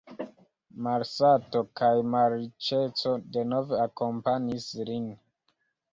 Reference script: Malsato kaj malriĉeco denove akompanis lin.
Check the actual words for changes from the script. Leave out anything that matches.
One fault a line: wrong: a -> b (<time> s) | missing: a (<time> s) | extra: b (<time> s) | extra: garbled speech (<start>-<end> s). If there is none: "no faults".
no faults